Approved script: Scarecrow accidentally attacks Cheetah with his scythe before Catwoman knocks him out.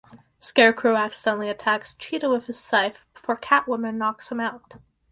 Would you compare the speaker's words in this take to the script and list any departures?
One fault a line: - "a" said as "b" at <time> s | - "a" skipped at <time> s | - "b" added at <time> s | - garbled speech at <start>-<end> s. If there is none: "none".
none